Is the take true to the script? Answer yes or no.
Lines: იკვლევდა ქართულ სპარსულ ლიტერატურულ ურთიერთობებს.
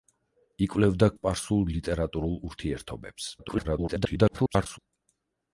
no